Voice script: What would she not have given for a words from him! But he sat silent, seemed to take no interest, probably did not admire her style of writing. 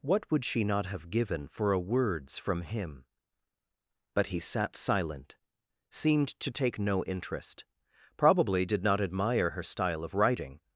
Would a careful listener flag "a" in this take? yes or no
no